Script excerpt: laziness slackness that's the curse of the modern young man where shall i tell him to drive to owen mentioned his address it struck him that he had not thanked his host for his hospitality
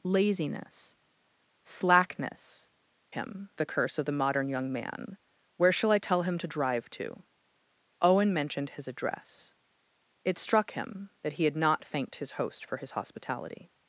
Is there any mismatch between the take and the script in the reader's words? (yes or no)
yes